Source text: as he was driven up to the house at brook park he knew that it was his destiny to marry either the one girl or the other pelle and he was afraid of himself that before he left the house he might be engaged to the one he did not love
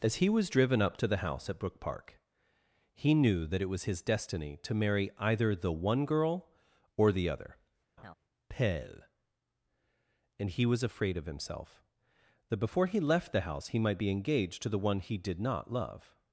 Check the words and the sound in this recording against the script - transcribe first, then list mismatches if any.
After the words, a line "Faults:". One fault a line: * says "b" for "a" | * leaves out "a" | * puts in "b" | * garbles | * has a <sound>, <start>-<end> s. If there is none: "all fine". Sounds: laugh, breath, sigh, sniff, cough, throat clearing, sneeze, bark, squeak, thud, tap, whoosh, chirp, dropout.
as he was driven up to the house at brook park he knew that it was his destiny to marry either the one girl or the other pelle and he was afraid of himself that before he left the house he might be engaged to the one he did not love
Faults:
* has a laugh, 8.0-8.1 s